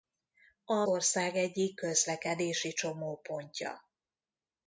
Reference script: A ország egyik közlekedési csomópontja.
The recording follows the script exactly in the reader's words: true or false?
true